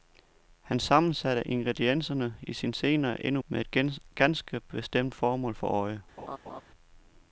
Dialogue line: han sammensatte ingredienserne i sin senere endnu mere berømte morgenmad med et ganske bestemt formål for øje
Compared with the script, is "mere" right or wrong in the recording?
wrong